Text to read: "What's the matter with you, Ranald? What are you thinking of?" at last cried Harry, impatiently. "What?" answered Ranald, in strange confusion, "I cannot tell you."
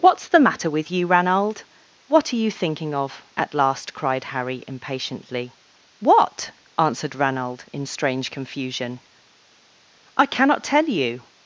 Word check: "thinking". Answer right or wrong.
right